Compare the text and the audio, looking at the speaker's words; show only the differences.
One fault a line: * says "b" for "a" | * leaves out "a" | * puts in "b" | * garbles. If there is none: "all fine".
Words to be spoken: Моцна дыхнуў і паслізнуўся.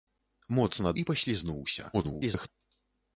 * leaves out "дыхнуў"
* garbles